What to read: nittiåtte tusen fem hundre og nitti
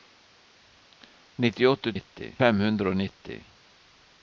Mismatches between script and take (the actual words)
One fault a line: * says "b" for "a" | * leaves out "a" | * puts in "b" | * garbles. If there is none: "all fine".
* says "nitti" for "tusen"